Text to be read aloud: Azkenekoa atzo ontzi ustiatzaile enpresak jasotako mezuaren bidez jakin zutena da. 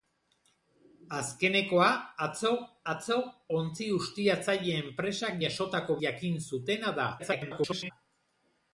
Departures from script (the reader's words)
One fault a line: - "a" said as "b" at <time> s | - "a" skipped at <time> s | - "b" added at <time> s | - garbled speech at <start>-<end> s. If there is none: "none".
- "atzo" added at 2.9 s
- "mezuaren bidez" skipped at 6.0 s
- garbled speech at 7.2-7.9 s